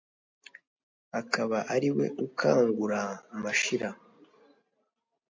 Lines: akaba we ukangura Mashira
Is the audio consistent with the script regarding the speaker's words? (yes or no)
no